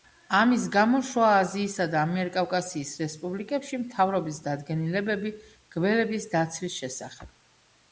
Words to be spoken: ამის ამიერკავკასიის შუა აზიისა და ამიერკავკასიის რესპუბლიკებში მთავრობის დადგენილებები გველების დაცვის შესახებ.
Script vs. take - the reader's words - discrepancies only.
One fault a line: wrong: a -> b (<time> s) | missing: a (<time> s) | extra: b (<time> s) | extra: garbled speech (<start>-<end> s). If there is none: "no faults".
wrong: ამიერკავკასიის -> გამო (0.8 s)